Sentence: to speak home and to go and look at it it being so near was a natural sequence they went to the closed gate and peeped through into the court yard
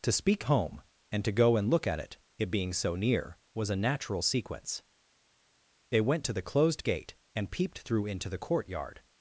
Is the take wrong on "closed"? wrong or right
right